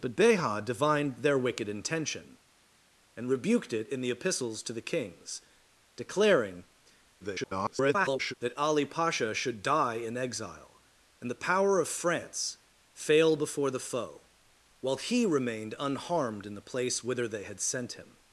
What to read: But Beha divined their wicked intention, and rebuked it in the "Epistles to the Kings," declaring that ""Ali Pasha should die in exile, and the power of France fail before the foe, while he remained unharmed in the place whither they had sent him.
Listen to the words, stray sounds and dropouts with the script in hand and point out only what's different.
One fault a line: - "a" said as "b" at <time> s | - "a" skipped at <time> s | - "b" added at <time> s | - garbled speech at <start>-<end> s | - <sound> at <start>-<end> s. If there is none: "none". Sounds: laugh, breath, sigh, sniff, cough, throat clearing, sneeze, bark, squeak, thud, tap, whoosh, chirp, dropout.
- garbled speech at 7.2-8.3 s